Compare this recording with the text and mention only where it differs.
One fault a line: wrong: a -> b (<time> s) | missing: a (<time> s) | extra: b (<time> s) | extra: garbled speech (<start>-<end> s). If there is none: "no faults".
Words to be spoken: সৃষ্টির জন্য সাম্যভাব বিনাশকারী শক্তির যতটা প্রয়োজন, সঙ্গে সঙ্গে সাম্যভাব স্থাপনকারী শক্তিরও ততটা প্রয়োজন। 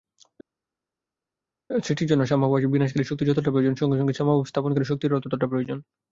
no faults